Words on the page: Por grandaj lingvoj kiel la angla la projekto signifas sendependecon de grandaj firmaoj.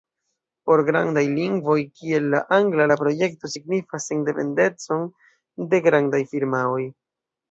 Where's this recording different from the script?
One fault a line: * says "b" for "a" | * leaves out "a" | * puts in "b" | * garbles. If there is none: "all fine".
all fine